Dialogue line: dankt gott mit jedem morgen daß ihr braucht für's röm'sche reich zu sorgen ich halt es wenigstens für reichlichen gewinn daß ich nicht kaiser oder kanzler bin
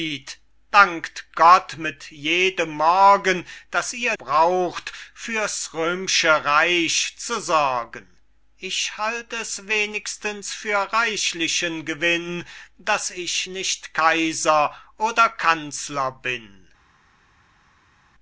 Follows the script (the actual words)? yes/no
yes